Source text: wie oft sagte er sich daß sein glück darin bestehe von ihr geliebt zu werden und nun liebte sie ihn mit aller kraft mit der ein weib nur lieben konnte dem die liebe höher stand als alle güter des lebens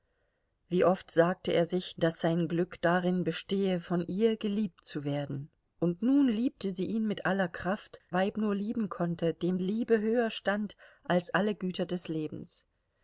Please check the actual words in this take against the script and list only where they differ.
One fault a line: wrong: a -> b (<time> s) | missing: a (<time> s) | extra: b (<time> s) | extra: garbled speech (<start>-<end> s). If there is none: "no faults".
missing: mit der ein (8.0 s)
missing: die (9.6 s)